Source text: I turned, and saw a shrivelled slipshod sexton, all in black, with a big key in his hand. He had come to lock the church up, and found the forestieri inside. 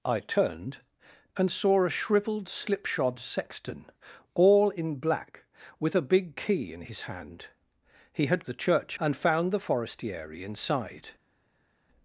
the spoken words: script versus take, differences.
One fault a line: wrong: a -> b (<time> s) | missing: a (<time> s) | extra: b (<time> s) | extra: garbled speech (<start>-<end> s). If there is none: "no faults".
missing: come to lock (8.4 s)
missing: up (9.0 s)